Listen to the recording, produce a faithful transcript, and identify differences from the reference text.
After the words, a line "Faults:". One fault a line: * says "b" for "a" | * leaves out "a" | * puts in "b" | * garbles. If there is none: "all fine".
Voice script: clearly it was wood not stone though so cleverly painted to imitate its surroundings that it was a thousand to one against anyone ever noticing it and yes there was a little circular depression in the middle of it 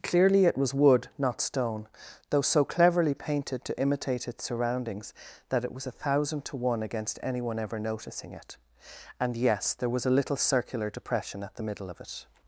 clearly it was wood not stone though so cleverly painted to imitate its surroundings that it was a thousand to one against anyone ever noticing it and yes there was a little circular depression at the middle of it
Faults:
* says "at" for "in"